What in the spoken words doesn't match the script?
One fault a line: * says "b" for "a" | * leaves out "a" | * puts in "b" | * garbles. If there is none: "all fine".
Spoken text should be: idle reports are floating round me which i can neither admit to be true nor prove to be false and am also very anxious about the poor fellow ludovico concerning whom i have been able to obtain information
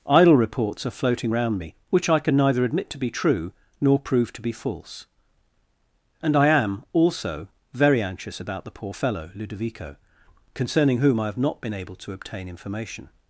* puts in "i"
* puts in "not"